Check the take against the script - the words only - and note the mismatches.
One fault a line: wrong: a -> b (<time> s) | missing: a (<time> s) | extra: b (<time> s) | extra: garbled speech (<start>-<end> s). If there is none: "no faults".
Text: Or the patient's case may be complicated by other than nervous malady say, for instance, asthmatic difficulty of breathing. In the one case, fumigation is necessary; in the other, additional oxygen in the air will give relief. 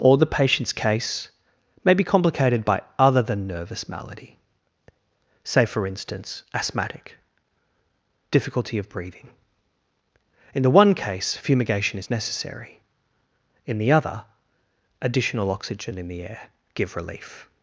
missing: will (16.5 s)